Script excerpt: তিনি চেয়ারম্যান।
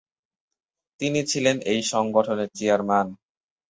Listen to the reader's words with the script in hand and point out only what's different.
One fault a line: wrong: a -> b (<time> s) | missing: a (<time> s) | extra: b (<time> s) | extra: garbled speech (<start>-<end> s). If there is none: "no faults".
extra: ছিলেন এই সংগঠনের (1.2 s)